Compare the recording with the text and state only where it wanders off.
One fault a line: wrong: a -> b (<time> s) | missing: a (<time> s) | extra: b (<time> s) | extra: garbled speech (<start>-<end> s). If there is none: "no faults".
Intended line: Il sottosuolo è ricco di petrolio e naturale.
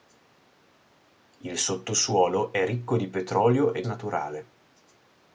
no faults